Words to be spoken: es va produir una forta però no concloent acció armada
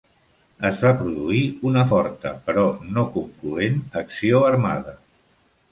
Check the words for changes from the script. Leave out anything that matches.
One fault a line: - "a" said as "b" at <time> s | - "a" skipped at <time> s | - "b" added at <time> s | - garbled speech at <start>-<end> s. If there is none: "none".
none